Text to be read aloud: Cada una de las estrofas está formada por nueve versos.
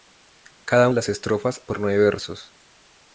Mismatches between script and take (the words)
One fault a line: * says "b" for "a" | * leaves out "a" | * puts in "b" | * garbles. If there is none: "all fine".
* leaves out "una"
* leaves out "está formada"